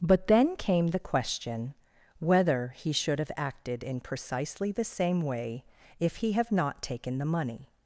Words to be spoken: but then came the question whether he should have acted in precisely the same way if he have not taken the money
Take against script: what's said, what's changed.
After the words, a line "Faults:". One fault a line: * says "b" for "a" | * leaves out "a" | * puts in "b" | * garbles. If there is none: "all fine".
but then came the question whether he should have acted in precisely the same way if he have not taken the money
Faults:
all fine